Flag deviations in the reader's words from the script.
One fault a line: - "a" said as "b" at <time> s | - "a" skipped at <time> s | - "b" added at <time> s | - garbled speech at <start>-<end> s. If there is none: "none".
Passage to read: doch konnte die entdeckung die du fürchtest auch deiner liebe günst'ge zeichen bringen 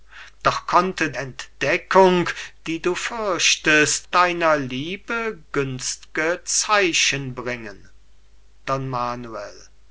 - "die" skipped at 1.1 s
- "auch" skipped at 4.1 s